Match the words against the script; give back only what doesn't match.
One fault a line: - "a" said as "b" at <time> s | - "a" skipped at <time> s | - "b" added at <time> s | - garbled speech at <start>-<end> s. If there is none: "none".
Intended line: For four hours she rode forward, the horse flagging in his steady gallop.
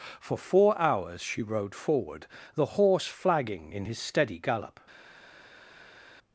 none